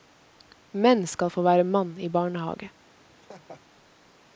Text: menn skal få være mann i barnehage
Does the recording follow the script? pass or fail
pass